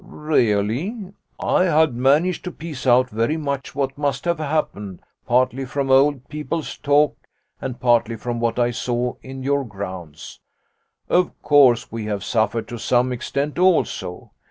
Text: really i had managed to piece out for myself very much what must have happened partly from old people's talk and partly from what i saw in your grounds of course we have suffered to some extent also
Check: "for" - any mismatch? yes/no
yes